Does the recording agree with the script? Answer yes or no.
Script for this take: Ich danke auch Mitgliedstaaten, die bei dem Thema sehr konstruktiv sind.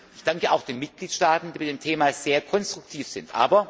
no